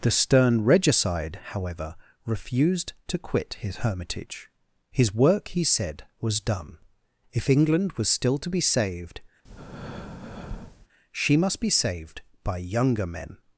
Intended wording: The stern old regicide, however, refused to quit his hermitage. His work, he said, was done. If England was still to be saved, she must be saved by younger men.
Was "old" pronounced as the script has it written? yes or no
no